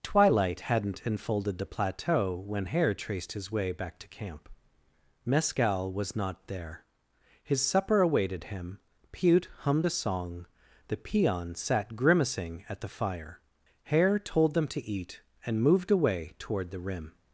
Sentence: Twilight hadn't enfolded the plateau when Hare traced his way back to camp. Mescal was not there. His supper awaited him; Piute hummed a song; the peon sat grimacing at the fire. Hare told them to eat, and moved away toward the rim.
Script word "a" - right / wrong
right